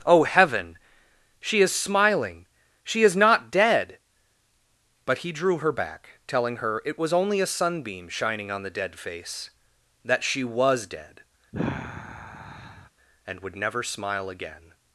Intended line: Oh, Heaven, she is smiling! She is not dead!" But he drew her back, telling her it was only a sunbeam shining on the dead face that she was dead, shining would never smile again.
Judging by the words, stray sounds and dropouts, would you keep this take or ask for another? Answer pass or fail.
fail